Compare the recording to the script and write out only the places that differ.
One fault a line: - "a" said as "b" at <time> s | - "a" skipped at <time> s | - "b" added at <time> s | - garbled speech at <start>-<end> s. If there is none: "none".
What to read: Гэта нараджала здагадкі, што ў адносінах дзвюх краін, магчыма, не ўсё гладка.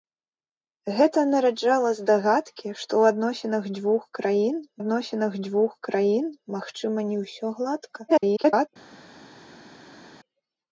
- "адносінах дзвюх краін" added at 4.8 s
- garbled speech at 8.1-8.7 s